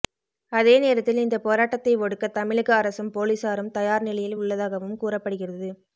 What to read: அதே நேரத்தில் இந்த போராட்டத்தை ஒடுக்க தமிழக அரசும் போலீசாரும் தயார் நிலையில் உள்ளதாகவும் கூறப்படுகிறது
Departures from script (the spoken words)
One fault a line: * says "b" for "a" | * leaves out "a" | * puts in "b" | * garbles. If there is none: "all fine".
all fine